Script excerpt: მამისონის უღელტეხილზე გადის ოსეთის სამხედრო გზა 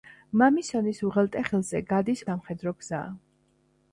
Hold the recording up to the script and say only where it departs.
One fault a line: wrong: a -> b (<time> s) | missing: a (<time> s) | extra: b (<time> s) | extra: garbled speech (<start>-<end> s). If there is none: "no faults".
missing: ოსეთის (2.2 s)